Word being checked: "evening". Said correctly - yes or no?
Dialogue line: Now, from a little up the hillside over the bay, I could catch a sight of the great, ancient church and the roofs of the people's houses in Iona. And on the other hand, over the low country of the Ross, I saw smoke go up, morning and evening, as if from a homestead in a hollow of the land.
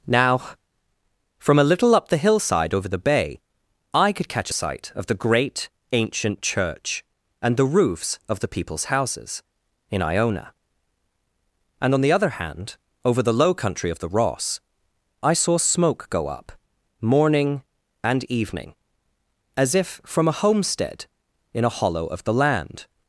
yes